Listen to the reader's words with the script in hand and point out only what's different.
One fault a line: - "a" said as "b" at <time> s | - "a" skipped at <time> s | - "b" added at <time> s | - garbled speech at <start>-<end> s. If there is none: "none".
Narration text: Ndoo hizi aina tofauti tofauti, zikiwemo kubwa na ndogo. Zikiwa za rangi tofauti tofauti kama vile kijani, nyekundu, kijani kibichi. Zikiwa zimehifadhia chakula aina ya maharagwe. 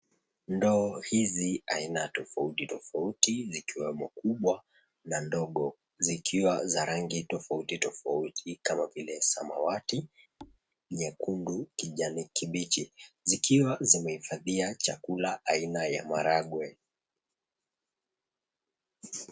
- "kijani" said as "samawati" at 9.2 s